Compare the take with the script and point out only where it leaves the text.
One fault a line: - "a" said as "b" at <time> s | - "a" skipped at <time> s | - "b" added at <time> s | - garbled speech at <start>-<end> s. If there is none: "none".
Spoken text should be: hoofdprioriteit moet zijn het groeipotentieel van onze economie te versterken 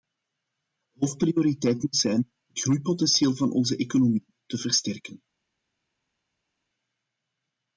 none